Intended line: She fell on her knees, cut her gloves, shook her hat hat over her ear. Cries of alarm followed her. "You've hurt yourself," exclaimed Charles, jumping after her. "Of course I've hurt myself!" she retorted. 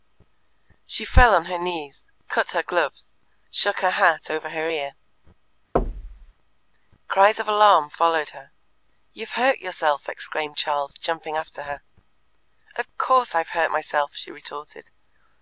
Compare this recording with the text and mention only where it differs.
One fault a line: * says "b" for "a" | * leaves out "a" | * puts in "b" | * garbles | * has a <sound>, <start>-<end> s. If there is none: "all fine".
* leaves out "hat"
* has a thud, 5.8-6.3 s